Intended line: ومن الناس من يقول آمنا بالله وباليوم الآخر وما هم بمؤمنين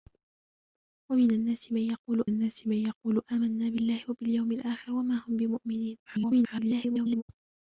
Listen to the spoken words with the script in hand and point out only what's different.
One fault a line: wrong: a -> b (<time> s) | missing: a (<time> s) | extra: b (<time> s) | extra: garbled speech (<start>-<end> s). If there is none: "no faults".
extra: الناس من يقول (2.2 s)
extra: garbled speech (6.1-7.2 s)